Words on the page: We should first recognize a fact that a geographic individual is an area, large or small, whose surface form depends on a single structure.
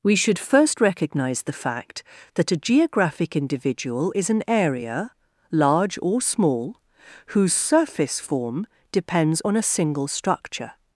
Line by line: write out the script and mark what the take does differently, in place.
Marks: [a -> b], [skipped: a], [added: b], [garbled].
We should first recognize [a -> the] fact that a geographic individual is an area, large or small, whose surface form depends on a single structure.